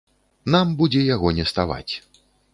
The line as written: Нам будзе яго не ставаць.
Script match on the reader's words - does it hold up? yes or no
yes